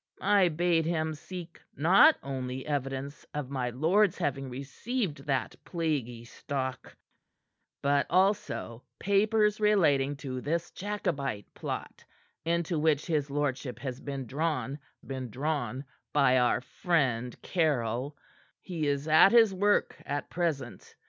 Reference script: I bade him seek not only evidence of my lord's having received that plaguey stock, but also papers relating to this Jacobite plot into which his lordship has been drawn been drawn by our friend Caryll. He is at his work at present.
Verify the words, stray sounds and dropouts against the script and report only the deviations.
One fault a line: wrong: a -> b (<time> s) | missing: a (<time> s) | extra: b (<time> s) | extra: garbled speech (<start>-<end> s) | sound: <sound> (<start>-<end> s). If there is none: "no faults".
no faults